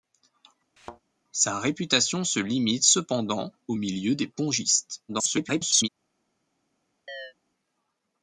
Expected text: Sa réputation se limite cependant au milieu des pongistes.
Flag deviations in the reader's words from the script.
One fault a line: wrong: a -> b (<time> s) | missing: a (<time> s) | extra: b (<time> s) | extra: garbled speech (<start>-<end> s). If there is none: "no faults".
extra: garbled speech (5.1-5.9 s)